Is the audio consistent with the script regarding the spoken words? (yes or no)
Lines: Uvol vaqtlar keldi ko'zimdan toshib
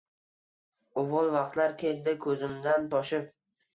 yes